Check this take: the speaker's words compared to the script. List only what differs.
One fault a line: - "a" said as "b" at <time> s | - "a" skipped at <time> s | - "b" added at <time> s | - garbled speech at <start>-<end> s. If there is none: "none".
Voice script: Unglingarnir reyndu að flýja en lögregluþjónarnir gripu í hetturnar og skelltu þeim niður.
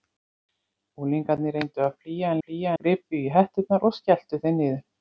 - "lögregluþjónarnir" said as "flýja" at 2.4 s